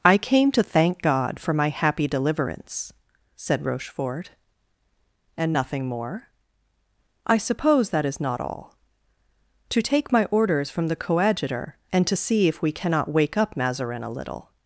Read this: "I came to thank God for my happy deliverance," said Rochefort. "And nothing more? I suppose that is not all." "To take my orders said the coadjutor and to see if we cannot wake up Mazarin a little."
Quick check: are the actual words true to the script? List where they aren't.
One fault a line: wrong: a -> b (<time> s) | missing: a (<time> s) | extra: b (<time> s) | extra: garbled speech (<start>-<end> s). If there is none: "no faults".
wrong: said -> from (10.7 s)